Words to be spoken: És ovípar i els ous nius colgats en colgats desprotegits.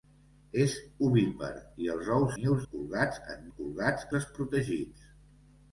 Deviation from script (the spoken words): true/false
false